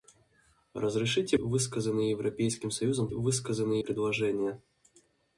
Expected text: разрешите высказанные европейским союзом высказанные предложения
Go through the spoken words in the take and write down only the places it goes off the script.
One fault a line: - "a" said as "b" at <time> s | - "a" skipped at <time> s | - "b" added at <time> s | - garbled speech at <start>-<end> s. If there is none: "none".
none